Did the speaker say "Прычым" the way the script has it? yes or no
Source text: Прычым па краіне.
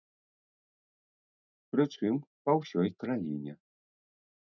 yes